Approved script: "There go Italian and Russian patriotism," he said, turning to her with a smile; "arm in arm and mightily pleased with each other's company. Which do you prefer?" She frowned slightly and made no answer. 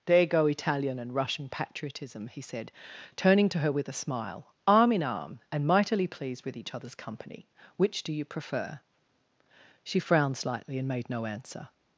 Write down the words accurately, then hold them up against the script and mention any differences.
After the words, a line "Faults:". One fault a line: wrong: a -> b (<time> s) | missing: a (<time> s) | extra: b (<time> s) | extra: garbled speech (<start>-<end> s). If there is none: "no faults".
"There go Italian and Russian patriotism," he said, turning to her with a smile; "arm in arm and mightily pleased with each other's company. Which do you prefer?" She frowned slightly and made no answer.
Faults:
no faults